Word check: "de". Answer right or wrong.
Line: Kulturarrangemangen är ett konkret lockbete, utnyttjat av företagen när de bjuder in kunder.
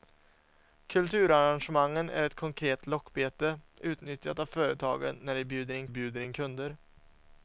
right